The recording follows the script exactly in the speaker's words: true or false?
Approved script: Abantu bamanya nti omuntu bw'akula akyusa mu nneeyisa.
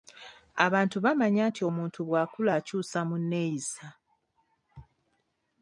true